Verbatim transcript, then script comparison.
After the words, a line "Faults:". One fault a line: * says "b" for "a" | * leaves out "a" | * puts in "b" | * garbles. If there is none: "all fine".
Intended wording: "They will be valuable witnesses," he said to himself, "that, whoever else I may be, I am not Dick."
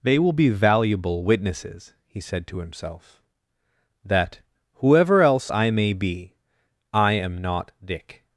"They will be valuable witnesses," he said to himself, "that, whoever else I may be, I am not Dick."
Faults:
all fine